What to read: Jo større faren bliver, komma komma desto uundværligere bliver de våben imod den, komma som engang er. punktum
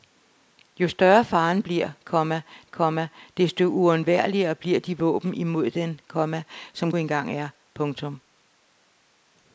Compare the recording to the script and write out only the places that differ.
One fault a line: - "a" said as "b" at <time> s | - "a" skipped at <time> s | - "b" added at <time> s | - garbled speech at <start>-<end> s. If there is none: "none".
none